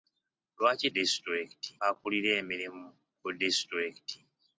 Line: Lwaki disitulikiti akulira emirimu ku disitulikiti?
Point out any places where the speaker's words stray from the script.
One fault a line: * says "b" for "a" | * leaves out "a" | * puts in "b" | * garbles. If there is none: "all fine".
all fine